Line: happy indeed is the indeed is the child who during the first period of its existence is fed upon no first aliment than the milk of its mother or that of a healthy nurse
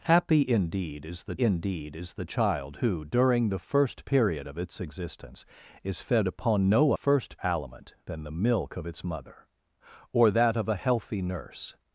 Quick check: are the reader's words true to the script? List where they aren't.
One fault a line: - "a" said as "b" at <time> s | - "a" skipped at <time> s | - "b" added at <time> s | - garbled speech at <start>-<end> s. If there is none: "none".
none